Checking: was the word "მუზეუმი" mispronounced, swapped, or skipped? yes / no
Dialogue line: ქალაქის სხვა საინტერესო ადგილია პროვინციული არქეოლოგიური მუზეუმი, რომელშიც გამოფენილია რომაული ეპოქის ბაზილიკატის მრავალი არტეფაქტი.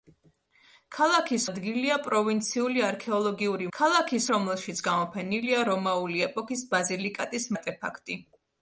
yes